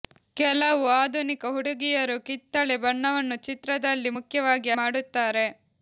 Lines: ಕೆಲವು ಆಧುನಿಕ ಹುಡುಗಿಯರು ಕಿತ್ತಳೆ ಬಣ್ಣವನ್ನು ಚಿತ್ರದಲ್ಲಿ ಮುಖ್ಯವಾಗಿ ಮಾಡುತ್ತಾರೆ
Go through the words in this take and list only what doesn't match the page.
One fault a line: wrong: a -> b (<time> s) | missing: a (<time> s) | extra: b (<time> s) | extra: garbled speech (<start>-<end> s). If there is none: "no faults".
no faults